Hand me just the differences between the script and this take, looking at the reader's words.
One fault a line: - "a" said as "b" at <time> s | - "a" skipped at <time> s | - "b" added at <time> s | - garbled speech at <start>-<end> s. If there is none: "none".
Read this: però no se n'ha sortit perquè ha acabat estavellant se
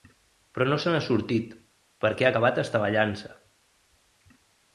none